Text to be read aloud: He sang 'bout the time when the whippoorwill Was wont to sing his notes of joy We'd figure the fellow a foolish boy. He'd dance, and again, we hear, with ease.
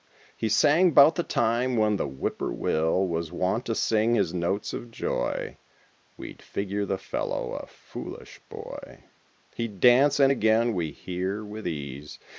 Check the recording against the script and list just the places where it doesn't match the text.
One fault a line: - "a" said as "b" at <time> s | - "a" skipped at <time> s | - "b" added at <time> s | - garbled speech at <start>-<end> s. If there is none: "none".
none